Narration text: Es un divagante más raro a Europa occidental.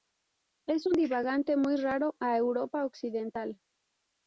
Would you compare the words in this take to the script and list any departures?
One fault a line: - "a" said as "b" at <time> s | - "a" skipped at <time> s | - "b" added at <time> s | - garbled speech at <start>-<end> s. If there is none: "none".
- "más" said as "muy" at 1.6 s